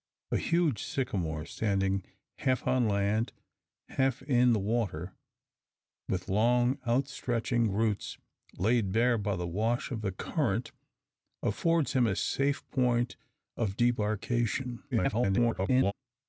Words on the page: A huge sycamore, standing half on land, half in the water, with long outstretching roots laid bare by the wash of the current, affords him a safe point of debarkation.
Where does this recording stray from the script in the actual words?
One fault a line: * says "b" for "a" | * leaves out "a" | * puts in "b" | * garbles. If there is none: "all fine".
* garbles